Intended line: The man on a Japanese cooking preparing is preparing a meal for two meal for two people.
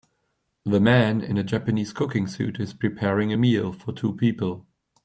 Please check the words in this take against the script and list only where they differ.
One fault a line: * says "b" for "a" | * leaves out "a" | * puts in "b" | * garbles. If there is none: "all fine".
* says "in" for "on"
* says "suit" for "preparing"
* leaves out "meal for two"